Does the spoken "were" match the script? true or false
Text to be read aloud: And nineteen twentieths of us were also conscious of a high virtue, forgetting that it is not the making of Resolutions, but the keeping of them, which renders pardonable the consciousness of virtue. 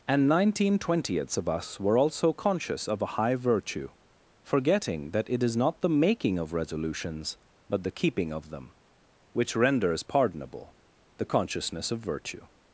true